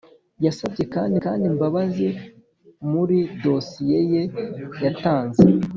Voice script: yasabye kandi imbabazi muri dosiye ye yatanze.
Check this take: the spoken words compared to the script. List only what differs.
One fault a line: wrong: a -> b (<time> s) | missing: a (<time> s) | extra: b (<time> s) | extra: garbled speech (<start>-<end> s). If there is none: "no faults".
extra: kandi (1.2 s)